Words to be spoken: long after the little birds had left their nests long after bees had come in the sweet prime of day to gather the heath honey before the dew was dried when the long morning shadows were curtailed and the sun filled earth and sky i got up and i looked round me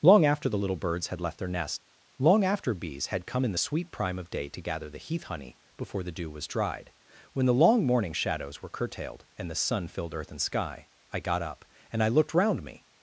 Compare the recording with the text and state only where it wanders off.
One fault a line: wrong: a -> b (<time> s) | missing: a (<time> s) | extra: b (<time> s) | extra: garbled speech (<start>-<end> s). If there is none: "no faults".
wrong: nests -> nest (1.5 s)